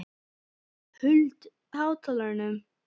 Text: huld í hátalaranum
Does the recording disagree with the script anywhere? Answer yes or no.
no